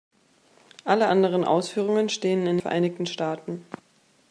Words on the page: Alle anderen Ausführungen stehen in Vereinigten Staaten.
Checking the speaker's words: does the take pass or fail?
pass